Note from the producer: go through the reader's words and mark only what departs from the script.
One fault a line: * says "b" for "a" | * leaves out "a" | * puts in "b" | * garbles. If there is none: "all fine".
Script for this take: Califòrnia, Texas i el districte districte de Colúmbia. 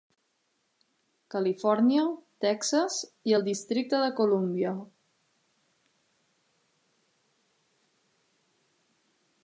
* leaves out "districte"